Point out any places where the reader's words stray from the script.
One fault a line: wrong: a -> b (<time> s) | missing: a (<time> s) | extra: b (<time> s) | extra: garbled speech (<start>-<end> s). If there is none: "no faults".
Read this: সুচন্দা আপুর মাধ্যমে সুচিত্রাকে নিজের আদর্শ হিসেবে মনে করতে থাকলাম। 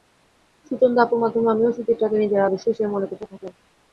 extra: আমিও (1.5 s)